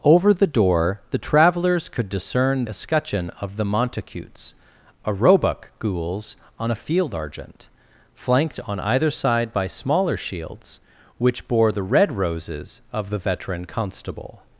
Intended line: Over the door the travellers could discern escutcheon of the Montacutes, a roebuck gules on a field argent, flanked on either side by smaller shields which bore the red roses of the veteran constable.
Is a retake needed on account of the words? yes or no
no